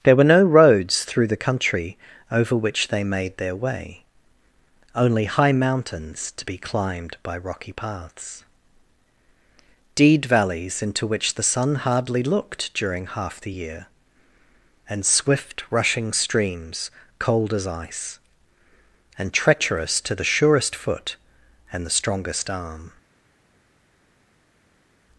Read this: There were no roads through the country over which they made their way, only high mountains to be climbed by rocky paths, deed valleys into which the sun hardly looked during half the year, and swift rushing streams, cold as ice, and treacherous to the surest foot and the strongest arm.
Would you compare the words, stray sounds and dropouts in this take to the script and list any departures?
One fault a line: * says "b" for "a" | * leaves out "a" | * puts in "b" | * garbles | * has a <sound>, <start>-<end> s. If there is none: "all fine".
all fine